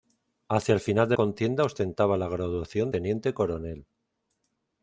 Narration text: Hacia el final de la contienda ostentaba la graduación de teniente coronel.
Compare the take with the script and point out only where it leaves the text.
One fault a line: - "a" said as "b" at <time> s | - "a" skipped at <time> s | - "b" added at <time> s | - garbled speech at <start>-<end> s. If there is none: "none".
- "la" skipped at 1.1 s
- "de" skipped at 2.9 s